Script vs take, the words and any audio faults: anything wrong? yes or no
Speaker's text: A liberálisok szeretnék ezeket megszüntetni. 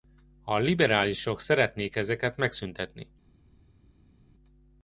no